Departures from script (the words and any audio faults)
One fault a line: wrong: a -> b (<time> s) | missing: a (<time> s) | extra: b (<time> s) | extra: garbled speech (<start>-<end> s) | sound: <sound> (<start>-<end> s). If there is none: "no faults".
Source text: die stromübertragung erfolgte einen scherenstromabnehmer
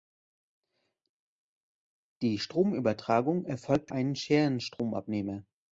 no faults